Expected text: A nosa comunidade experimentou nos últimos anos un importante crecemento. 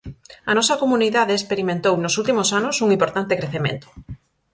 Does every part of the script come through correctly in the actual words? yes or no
yes